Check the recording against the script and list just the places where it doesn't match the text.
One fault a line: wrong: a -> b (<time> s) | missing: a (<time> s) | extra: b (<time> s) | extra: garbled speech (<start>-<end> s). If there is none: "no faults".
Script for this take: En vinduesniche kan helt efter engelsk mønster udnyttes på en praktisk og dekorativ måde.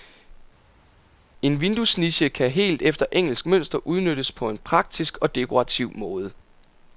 no faults